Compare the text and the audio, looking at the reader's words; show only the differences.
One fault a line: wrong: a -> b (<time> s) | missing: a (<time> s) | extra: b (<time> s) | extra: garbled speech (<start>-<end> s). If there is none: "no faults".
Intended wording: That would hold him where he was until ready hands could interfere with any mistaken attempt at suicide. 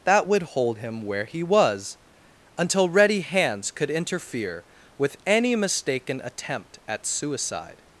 no faults